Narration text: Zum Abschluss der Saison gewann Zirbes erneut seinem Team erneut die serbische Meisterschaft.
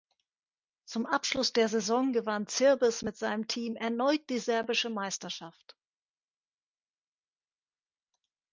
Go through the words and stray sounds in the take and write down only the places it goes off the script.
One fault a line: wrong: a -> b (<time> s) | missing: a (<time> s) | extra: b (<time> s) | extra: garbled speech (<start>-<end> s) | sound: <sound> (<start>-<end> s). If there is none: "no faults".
wrong: erneut -> mit (3.0 s)